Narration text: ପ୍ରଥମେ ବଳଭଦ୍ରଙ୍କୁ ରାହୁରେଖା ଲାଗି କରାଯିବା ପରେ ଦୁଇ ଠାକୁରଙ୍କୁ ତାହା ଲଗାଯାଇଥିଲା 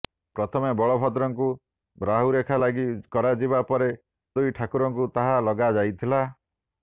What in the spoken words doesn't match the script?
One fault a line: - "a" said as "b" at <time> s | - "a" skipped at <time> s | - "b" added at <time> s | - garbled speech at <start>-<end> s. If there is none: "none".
none